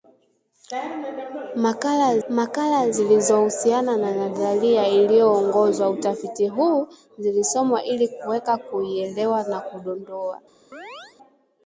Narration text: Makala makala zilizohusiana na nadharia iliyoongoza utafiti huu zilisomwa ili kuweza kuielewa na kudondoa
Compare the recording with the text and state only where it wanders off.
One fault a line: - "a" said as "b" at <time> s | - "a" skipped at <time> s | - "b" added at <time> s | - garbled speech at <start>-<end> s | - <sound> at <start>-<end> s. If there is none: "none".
- chirp at 10.7-11.2 s